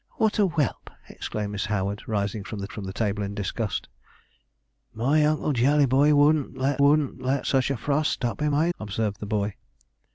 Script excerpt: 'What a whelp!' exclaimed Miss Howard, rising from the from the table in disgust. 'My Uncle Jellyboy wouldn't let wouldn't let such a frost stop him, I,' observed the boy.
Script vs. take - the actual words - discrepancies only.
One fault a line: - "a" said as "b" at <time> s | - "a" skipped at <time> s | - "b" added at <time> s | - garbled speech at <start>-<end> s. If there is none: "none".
none